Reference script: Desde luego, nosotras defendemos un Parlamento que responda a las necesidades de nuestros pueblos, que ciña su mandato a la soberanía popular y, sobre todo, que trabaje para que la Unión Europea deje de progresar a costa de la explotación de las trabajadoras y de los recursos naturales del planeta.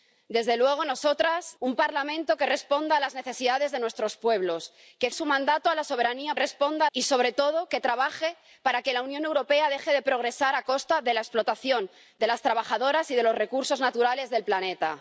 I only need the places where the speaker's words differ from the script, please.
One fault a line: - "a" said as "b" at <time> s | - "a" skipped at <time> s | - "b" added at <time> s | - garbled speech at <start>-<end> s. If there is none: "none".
- "defendemos" skipped at 1.6 s
- "ciña" skipped at 5.1 s
- "popular" said as "responda" at 6.4 s